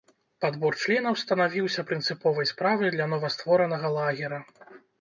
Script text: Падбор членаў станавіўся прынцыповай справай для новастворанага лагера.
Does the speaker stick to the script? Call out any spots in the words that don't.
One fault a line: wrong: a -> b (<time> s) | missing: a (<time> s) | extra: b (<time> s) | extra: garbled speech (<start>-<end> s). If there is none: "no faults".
no faults